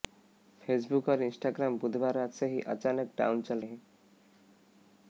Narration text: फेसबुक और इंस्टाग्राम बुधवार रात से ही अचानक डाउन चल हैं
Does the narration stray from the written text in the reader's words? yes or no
no